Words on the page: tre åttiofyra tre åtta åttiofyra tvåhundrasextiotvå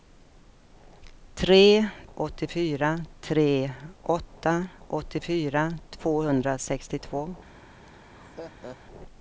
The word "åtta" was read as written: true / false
true